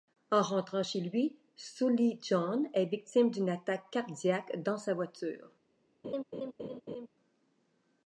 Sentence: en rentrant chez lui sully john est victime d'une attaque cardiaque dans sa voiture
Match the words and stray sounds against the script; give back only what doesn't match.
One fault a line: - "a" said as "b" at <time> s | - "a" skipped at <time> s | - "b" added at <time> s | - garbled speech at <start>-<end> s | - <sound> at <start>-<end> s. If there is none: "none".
- laugh at 6.0-7.1 s